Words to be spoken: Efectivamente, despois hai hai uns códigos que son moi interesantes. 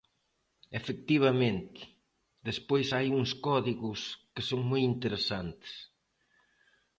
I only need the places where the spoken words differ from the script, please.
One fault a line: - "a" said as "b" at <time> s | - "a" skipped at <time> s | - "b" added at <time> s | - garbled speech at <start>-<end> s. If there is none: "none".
- "hai" skipped at 3.1 s